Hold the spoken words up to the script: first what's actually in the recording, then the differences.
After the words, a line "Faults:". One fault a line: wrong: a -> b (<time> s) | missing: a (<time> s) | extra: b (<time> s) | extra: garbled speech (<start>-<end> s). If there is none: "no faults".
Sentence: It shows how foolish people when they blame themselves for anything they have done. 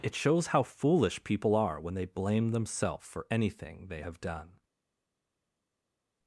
It shows how foolish people are when they blame themselves for anything they have done.
Faults:
extra: are (1.6 s)